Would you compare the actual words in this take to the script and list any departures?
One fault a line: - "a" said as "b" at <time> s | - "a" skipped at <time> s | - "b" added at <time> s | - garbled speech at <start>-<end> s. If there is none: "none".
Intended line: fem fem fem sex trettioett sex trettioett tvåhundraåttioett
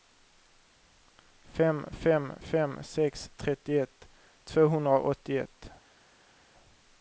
- "sex trettioett" skipped at 4.1 s